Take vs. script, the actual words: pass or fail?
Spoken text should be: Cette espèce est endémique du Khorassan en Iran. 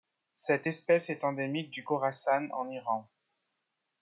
pass